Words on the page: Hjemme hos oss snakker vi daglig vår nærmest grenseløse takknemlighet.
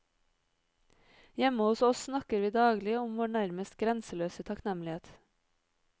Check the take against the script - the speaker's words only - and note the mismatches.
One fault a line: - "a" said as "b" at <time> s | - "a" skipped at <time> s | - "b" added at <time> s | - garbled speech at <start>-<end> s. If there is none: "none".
- "om" added at 3.0 s